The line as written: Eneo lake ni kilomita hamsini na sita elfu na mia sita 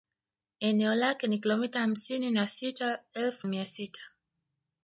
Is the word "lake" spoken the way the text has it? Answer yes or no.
yes